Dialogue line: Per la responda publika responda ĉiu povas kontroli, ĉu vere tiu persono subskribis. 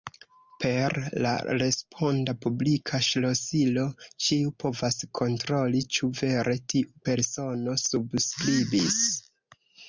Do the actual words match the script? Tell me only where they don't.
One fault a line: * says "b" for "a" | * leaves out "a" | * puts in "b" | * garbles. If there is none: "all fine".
* says "ŝlosilo" for "responda"